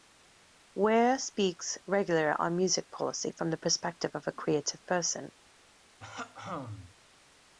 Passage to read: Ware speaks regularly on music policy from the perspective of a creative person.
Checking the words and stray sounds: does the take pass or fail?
fail